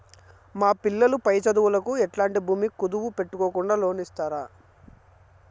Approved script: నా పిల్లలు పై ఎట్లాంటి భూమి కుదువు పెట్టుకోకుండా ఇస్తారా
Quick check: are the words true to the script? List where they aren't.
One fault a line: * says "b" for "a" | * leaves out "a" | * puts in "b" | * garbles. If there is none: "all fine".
* says "మా" for "నా"
* puts in "చదువులకు"
* puts in "లోను"